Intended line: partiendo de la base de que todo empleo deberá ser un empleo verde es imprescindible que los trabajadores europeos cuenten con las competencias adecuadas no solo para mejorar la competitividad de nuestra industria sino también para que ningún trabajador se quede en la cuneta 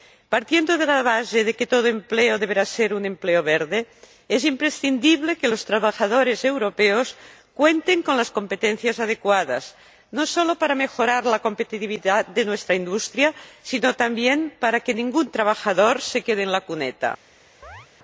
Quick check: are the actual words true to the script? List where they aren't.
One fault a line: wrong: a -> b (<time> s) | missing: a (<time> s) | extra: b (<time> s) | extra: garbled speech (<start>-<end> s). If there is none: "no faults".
no faults